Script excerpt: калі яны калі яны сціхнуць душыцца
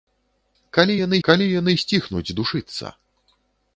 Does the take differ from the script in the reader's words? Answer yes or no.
no